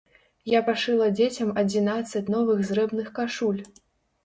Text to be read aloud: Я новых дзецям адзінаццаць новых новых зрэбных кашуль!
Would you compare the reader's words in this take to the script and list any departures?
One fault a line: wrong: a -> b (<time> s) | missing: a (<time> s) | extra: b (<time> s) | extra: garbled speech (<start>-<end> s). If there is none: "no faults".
wrong: новых -> пашыла (0.7 s)
missing: новых (2.7 s)